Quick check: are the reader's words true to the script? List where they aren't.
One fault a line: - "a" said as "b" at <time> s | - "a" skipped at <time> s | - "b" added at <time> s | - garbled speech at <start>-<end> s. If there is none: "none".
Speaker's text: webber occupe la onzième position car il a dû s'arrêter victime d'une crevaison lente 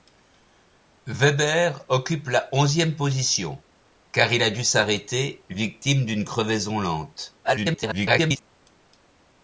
- garbled speech at 7.4-8.4 s